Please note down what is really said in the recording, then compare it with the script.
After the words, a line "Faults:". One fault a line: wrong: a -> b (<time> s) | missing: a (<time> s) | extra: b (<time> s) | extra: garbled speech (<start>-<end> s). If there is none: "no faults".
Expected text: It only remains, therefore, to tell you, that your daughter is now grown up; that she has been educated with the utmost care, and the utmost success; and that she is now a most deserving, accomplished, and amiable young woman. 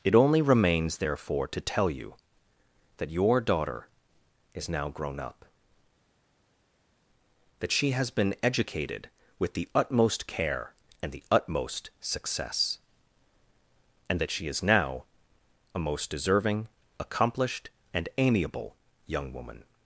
It only remains, therefore, to tell you, that your daughter is now grown up; that she has been educated with the utmost care, and the utmost success; and that she is now a most deserving, accomplished, and amiable young woman.
Faults:
no faults